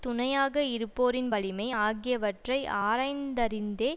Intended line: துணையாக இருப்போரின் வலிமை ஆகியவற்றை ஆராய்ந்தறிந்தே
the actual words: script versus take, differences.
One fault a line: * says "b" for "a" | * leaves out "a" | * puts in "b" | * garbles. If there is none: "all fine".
all fine